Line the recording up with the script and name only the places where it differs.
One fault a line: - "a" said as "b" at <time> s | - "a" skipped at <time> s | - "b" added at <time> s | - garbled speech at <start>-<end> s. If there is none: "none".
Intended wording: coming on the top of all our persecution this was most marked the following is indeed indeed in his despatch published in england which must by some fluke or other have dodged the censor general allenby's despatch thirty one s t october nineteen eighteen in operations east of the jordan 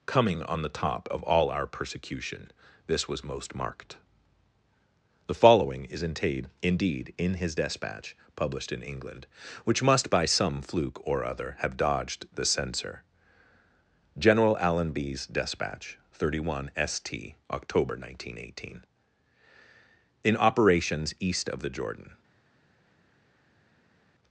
none